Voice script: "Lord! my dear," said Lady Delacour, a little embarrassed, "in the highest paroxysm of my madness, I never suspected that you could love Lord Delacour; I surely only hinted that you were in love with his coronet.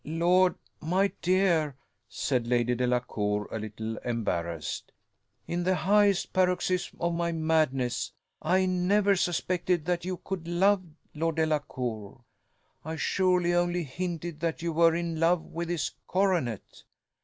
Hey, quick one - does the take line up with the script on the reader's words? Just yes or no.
yes